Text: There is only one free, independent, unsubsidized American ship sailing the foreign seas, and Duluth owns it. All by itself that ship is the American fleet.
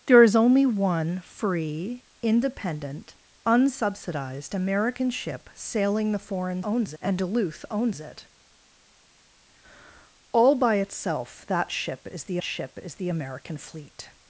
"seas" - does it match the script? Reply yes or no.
no